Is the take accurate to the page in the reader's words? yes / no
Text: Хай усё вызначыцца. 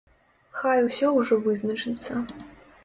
no